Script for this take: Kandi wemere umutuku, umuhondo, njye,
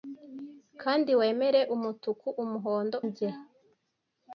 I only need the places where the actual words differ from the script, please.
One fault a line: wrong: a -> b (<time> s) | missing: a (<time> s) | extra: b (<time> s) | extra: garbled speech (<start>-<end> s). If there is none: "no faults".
no faults